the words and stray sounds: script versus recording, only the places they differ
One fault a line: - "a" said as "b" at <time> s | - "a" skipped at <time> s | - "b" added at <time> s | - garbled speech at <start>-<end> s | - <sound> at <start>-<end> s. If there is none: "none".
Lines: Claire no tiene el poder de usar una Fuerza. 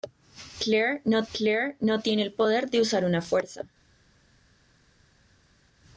- "claire no" added at 1.3 s